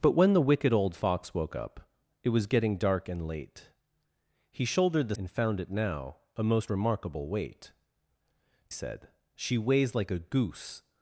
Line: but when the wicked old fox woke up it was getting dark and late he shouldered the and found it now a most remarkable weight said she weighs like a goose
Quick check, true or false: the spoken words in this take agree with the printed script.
true